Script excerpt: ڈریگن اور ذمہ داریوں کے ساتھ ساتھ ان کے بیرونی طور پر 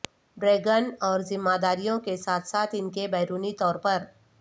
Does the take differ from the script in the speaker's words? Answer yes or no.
no